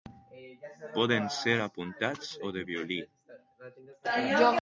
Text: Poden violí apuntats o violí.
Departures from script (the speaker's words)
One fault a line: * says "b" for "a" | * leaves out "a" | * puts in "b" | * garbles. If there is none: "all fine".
* says "ser" for "violí"
* puts in "de"